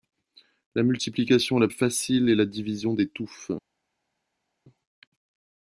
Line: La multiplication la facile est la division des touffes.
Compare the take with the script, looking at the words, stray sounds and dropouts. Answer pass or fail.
pass